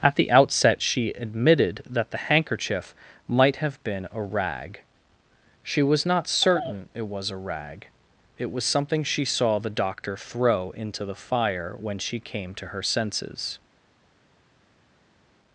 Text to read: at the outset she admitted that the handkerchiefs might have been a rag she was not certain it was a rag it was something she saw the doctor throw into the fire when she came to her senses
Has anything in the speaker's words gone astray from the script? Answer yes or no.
yes